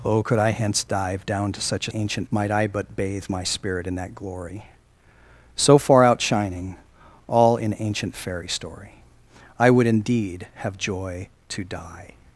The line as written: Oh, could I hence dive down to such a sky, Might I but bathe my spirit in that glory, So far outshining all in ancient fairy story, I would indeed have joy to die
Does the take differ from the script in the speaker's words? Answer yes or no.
yes